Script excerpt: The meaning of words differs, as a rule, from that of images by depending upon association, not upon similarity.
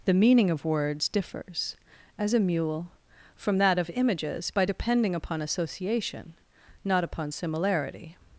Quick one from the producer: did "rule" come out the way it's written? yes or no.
no